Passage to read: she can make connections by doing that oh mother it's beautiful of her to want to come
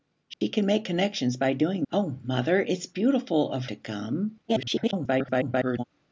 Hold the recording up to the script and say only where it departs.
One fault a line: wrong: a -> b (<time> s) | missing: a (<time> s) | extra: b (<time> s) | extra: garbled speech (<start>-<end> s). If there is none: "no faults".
missing: that (1.9 s)
missing: her to want (3.7 s)
extra: garbled speech (4.5-5.8 s)